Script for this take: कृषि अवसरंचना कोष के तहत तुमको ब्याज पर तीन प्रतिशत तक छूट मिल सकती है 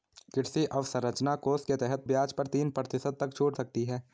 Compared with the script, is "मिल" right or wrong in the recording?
wrong